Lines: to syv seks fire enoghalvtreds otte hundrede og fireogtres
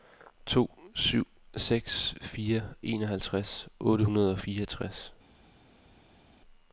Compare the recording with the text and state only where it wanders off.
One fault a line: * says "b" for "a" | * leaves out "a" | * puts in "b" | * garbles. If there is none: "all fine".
all fine